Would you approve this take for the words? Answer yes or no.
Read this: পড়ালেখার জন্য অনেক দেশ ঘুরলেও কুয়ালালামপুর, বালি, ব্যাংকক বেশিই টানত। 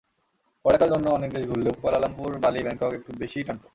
no